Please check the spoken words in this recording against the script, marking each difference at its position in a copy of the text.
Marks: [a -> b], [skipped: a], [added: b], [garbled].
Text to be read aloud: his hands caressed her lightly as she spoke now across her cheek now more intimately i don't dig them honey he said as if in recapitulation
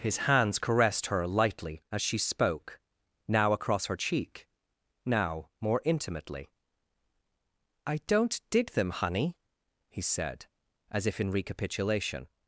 his hands caressed her lightly as she spoke now across her cheek now more intimately i don't dig them honey he said as if in recapitulation